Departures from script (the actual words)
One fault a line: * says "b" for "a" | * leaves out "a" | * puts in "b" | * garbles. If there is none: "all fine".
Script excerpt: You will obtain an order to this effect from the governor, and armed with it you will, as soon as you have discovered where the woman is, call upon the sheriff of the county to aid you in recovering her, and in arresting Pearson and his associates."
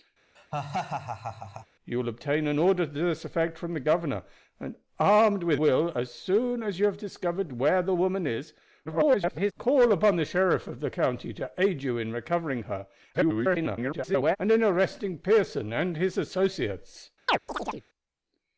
* leaves out "it you"
* garbles
* garbles